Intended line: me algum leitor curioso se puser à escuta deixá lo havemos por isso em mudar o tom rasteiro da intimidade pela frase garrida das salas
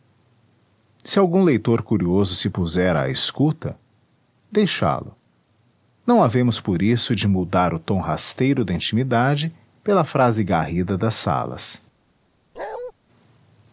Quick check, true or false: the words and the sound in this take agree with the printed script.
false